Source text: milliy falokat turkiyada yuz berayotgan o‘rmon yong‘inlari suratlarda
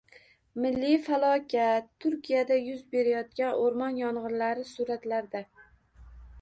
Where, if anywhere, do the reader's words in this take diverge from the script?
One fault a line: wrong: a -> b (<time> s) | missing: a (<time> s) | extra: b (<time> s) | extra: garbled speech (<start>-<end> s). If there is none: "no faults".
no faults